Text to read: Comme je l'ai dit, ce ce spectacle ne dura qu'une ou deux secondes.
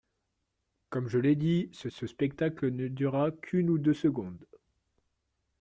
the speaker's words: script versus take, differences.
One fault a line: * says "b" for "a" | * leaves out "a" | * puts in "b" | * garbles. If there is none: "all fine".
all fine